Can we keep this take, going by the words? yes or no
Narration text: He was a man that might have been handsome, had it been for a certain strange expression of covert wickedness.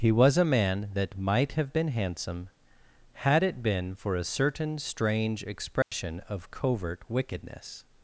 yes